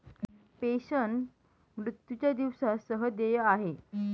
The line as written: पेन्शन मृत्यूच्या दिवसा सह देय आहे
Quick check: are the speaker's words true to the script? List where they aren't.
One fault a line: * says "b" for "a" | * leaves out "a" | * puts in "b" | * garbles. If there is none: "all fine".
all fine